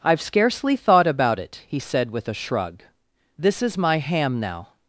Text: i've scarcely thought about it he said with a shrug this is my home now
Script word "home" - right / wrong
wrong